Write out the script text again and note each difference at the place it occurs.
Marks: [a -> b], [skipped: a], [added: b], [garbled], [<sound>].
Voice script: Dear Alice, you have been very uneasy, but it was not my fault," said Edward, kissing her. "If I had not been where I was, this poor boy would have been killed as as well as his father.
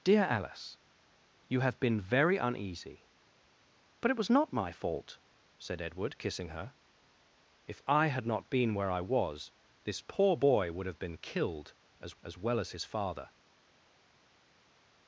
Dear Alice, you have been very uneasy, but it was not my fault," said Edward, kissing her. "If I had not been where I was, this poor boy would have been killed as as well as his father.